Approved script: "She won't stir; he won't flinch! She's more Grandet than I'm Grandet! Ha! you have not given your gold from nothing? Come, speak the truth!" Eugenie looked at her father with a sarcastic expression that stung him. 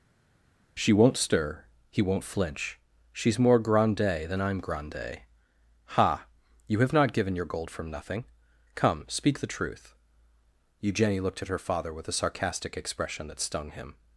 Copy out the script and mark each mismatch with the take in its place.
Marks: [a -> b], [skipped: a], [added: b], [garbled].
"She won't stir; he won't flinch! She's more Grandet than I'm Grandet! Ha! you have not given your gold from nothing? Come, speak the truth!" Eugenie looked at her father with a sarcastic expression that stung him.